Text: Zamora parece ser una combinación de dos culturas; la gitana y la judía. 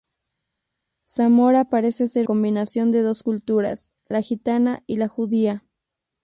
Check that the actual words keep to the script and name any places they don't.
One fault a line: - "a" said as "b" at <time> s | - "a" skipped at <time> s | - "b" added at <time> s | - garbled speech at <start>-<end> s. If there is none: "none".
- "una" skipped at 2.3 s